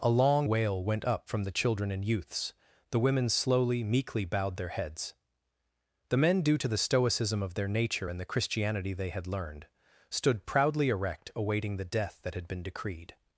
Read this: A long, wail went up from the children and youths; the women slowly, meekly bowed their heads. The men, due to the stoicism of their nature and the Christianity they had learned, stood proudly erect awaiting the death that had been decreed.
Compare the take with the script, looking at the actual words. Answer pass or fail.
pass